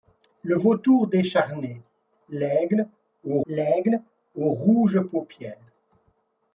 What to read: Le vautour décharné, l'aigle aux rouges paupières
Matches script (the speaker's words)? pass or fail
fail